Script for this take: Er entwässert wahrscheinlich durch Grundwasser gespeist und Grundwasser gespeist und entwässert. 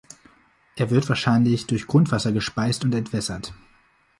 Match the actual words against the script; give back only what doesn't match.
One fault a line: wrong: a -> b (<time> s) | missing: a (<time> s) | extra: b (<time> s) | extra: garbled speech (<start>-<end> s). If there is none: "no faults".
wrong: entwässert -> wird (0.9 s)
missing: Grundwasser gespeist und (3.0 s)